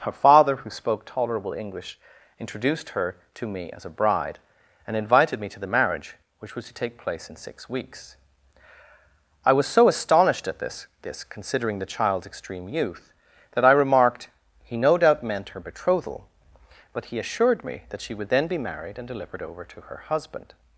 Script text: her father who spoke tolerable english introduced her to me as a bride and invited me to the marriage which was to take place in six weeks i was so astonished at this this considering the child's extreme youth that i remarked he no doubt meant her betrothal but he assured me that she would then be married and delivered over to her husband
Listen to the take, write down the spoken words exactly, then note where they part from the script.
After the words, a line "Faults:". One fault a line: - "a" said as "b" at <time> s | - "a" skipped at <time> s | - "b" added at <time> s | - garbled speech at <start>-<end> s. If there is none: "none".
her father who spoke tolerable english introduced her to me as a bride and invited me to the marriage which was to take place in six weeks i was so astonished at this this considering the child's extreme youth that i remarked he no doubt meant her betrothal but he assured me that she would then be married and delivered over to her husband
Faults:
none